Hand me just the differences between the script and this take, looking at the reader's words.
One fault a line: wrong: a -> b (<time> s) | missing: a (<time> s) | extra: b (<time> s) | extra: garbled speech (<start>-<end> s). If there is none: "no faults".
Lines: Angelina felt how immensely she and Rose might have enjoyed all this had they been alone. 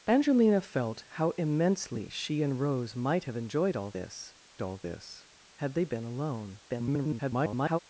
extra: all this (4.6 s)
extra: garbled speech (6.7-7.8 s)